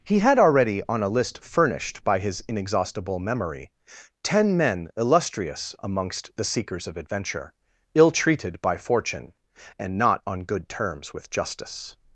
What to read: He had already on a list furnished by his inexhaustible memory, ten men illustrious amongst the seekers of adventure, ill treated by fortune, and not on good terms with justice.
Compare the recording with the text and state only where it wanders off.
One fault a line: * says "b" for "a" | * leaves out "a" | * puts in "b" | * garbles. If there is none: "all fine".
all fine